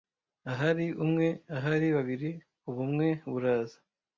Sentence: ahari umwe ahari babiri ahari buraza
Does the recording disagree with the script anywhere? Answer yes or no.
yes